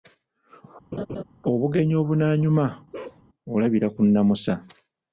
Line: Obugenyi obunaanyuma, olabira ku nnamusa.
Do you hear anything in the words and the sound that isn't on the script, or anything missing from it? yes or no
yes